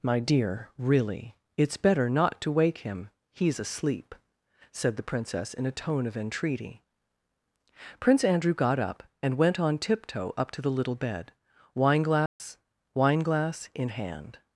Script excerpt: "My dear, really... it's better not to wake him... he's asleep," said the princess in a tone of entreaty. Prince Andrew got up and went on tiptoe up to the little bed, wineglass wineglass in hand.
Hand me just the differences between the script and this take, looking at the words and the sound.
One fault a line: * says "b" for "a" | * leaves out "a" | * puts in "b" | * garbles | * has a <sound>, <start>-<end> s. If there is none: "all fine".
* has a dropout, 12.3-12.4 s